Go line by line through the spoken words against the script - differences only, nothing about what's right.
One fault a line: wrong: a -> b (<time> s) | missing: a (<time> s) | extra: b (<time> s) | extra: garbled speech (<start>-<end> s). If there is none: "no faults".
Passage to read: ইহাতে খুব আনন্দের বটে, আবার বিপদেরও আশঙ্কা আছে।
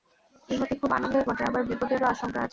no faults